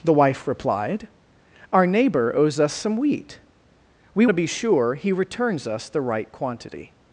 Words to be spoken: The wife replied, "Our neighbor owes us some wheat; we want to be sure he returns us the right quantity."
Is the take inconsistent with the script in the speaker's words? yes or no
yes